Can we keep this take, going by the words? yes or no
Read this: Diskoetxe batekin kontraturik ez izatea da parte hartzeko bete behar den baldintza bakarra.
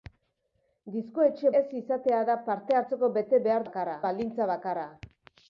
no